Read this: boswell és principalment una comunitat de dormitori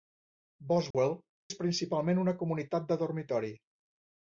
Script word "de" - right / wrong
right